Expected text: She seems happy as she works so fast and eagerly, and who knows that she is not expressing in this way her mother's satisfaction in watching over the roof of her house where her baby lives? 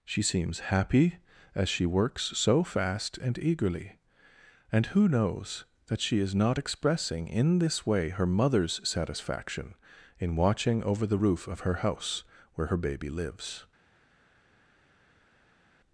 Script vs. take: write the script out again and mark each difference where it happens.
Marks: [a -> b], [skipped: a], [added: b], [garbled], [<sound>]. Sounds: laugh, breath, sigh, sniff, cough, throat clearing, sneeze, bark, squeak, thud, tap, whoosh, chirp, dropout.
She seems happy as she works so fast and eagerly, and who knows that she is not expressing in this way her mother's satisfaction in watching over the roof of her house where her baby lives?